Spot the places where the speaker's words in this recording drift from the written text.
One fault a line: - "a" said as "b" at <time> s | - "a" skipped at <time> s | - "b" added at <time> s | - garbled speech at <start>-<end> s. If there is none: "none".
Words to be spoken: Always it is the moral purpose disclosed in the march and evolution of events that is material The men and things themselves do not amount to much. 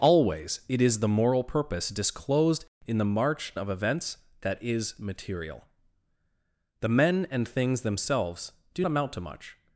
- "and evolution" skipped at 3.5 s
- "not" skipped at 8.8 s